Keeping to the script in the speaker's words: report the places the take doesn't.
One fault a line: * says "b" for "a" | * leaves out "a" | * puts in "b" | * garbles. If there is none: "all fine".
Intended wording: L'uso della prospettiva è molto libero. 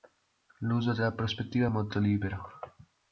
all fine